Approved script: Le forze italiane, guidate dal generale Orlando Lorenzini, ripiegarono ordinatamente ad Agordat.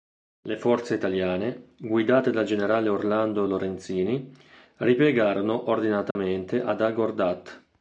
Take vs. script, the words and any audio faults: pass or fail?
fail